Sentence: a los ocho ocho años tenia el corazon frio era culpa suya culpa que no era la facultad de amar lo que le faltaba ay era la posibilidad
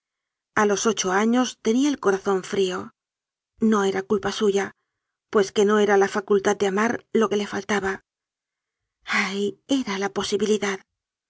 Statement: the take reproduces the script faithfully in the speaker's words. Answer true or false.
false